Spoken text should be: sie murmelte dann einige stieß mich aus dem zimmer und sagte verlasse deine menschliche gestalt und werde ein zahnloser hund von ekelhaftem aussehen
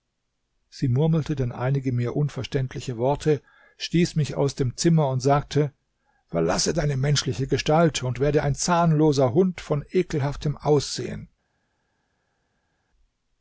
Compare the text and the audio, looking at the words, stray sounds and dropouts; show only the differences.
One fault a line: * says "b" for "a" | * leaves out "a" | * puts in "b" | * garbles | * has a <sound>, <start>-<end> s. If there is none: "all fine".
* puts in "mir unverständliche worte"